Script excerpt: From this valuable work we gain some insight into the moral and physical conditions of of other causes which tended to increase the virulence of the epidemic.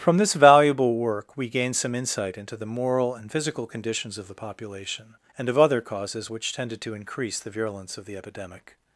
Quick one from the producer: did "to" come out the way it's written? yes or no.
yes